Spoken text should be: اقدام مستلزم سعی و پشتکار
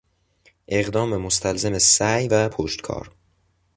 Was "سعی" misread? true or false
false